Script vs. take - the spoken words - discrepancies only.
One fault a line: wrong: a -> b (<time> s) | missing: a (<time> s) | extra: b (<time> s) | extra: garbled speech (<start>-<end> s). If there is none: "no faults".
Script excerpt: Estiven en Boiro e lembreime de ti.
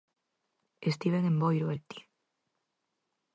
missing: lembreime (1.8 s)